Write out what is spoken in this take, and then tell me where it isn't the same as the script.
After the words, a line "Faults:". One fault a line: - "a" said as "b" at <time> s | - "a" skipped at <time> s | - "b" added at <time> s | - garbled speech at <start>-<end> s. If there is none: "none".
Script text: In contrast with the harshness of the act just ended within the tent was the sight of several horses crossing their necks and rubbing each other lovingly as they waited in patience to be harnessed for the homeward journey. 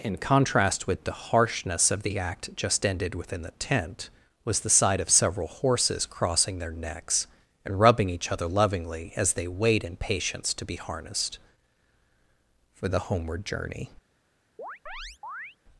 In contrast with the harshness of the act just ended within the tent was the sight of several horses crossing their necks and rubbing each other lovingly as they wait in patience to be harnessed for the homeward journey.
Faults:
- "waited" said as "wait" at 9.5 s